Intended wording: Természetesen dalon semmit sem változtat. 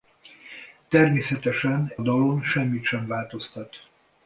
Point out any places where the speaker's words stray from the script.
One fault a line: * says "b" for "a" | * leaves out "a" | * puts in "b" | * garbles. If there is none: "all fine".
all fine